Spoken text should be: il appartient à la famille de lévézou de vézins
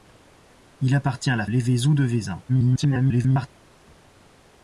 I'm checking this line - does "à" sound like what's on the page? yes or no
yes